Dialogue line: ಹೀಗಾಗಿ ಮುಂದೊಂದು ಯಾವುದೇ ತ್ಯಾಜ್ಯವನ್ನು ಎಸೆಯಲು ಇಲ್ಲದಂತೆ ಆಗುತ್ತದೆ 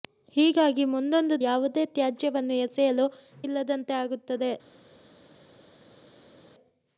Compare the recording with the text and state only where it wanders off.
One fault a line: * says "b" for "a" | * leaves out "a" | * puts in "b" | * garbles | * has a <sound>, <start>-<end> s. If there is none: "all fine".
all fine